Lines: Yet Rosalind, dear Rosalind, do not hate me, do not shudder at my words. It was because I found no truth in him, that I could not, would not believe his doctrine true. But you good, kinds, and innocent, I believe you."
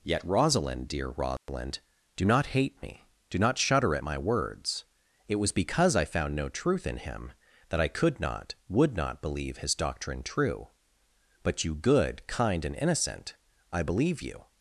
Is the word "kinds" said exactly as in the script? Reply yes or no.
no